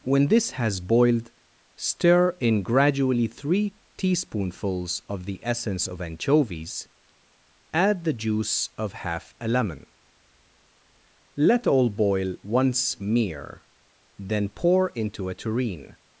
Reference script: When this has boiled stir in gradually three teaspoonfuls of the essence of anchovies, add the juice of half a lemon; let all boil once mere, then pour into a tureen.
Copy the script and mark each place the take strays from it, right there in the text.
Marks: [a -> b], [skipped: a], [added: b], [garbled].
When this has boiled stir in gradually three teaspoonfuls of the essence of anchovies, add the juice of half a lemon; let all boil once mere, then pour into a tureen.